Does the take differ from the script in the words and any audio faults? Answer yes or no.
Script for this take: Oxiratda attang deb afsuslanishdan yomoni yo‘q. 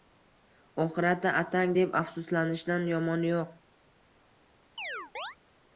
yes